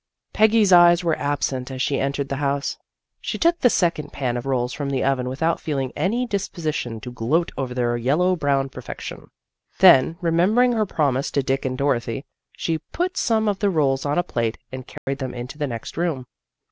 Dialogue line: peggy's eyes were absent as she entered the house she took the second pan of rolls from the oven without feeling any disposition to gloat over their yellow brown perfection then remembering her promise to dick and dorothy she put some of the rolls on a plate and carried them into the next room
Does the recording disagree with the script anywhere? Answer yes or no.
no